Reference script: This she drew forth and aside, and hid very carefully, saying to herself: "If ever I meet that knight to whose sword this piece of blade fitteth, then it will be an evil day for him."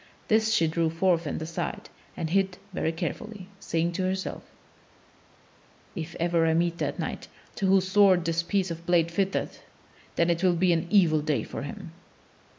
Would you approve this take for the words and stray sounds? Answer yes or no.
yes